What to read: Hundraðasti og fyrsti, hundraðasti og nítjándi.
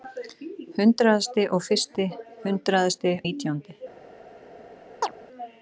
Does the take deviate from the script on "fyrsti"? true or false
false